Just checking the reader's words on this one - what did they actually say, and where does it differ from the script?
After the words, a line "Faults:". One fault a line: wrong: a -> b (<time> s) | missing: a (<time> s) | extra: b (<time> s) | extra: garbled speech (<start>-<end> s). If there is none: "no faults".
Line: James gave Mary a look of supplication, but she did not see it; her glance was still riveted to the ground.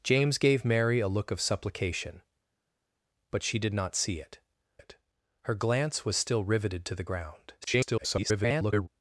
James gave Mary a look of supplication, but she did not see it it; her glance was still riveted to the ground. [garbled]
Faults:
extra: it (4.8 s)
extra: garbled speech (7.6-8.9 s)